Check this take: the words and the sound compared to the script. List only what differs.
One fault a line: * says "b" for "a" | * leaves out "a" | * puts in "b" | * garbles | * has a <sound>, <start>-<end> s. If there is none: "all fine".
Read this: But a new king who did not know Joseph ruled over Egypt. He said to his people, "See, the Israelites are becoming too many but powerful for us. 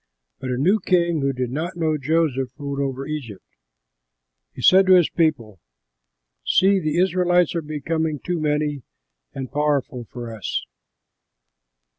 * says "and" for "but"